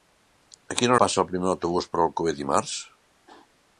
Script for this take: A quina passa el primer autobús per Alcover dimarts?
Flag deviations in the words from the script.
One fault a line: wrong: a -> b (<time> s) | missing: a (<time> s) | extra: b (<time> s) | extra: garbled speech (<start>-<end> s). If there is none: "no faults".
no faults